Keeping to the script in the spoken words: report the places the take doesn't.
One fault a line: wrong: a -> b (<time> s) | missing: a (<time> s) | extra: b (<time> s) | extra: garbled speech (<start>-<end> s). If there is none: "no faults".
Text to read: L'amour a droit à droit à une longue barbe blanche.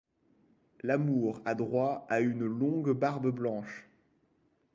missing: droit à (2.2 s)